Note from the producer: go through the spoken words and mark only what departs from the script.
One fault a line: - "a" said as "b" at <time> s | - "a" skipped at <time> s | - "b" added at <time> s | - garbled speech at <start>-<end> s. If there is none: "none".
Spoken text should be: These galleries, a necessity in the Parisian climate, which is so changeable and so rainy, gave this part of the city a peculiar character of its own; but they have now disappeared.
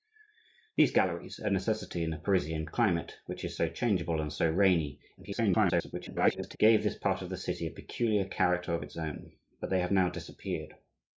- garbled speech at 5.2-6.6 s